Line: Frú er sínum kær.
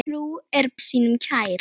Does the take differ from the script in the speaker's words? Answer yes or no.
no